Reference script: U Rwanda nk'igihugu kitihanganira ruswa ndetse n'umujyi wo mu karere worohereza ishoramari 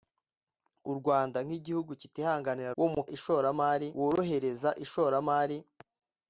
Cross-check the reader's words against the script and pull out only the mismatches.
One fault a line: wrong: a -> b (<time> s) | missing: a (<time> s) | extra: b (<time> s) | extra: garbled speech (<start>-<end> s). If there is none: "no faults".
missing: ruswa ndetse n'umujyi (2.8 s)
wrong: karere -> ishoramari (3.2 s)